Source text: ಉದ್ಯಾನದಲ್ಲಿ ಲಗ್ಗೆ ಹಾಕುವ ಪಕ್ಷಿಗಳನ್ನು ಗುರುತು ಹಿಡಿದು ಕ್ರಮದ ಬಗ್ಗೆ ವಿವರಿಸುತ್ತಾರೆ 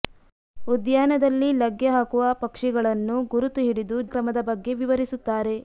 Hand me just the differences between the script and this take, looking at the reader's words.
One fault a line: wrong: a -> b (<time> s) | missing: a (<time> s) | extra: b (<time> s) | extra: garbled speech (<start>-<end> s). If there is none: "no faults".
no faults